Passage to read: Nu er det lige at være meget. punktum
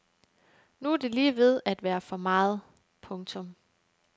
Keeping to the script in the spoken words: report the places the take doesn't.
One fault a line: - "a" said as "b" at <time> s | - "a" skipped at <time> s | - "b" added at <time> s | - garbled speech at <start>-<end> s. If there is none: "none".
- "ved" added at 1.4 s
- "for" added at 2.0 s